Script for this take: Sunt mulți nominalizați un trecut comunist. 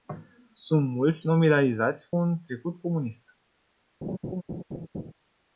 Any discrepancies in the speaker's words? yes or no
no